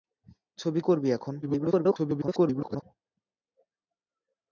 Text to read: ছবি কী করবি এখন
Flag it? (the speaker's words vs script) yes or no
yes